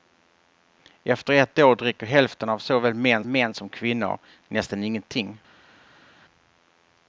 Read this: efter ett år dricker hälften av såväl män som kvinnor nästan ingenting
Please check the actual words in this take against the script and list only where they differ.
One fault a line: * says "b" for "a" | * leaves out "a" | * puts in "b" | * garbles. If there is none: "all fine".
* puts in "män"